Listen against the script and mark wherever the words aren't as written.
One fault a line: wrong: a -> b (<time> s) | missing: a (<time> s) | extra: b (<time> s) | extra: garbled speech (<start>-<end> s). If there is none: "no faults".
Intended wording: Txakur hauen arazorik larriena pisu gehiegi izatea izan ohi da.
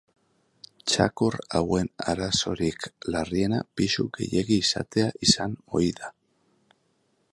no faults